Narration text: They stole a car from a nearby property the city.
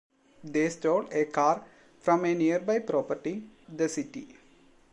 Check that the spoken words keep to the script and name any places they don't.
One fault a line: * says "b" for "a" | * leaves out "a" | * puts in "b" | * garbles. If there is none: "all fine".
all fine